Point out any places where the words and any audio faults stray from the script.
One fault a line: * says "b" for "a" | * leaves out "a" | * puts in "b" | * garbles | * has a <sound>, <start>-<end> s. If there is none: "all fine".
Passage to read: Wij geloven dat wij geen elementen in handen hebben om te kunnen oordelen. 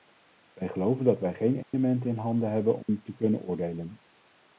* has a dropout, 1.6-1.7 s
* has a dropout, 2.8-2.9 s